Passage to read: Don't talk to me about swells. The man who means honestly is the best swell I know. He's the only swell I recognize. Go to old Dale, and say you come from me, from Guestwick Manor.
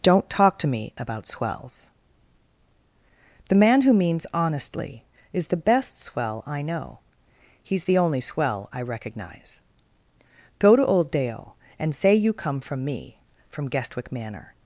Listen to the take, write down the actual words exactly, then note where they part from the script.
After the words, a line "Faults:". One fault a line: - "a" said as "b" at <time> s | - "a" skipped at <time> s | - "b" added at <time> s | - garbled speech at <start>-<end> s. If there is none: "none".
Don't talk to me about swells. The man who means honestly is the best swell I know. He's the only swell I recognize. Go to old Dale, and say you come from me, from Guestwick Manor.
Faults:
none